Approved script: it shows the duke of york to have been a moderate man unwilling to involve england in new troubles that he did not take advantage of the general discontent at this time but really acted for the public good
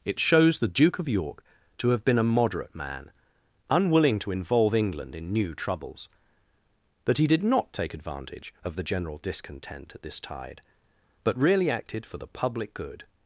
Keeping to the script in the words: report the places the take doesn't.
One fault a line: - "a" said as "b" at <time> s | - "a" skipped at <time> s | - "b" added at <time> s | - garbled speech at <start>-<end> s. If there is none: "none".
- "time" said as "tide" at 10.2 s